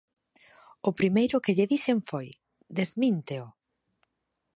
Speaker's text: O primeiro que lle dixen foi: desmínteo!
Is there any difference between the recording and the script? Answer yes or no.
no